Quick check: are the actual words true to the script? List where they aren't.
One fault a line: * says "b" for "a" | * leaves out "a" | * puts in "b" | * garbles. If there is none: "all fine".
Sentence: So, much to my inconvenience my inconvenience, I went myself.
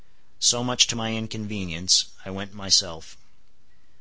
* leaves out "my inconvenience"